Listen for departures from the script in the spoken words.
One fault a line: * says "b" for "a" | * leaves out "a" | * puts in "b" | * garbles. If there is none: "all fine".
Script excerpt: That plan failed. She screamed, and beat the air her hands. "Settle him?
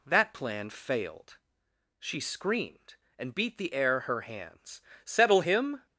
all fine